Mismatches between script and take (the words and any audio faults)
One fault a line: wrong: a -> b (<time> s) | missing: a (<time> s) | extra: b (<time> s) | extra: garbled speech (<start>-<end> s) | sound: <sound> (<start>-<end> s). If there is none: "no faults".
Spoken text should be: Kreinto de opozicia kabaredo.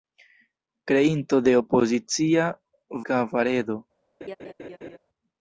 sound: laugh (4.2-5.0 s)